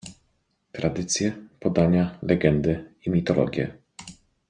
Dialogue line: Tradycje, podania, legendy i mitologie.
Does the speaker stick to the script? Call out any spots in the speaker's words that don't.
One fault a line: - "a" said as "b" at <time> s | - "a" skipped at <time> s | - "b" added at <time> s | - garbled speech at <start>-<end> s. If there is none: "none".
none